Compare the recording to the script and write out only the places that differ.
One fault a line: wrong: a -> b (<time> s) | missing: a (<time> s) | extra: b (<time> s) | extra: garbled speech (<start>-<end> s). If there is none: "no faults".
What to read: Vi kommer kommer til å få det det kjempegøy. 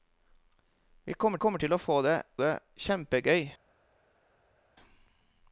no faults